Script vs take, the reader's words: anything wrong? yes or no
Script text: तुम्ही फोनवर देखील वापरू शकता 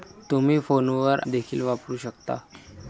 no